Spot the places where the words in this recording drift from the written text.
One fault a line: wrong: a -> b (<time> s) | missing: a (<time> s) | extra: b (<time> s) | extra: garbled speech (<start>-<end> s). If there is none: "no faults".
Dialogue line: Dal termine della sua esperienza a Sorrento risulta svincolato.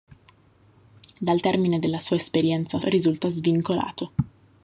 missing: Sorrento (2.8 s)